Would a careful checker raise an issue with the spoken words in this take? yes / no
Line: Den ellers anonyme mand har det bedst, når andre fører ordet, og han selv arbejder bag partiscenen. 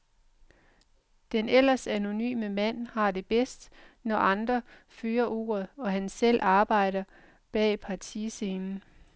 no